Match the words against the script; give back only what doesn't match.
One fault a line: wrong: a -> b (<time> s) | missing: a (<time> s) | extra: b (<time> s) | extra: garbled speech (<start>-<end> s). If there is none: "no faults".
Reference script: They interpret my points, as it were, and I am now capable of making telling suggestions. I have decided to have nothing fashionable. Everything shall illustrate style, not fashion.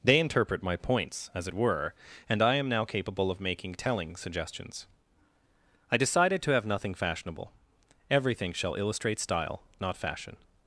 missing: have (6.0 s)